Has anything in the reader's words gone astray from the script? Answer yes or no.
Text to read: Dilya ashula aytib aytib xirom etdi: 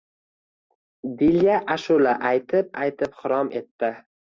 no